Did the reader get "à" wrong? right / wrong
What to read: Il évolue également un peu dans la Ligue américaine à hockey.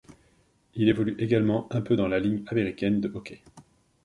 wrong